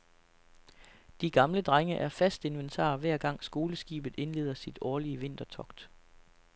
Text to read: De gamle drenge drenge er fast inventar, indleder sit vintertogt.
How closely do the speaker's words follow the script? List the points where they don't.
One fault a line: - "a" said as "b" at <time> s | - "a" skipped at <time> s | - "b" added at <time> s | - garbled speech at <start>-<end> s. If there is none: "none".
- "drenge" skipped at 1.9 s
- "hver gang skoleskibet" added at 3.0 s
- "årlige" added at 4.8 s